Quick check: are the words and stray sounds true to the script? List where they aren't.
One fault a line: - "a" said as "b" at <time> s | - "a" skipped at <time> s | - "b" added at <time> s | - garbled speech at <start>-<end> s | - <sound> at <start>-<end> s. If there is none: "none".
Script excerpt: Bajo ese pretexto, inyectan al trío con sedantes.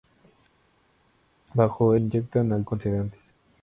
- "ese pretexto" skipped at 2.0 s
- "trío" skipped at 2.7 s